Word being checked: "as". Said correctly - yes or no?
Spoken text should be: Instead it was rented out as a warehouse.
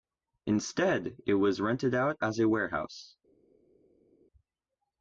yes